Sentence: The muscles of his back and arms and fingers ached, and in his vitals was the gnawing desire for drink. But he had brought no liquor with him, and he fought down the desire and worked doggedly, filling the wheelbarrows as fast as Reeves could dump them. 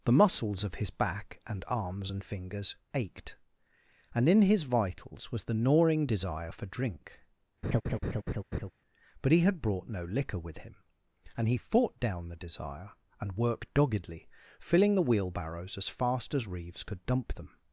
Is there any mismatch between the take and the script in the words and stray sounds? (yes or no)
yes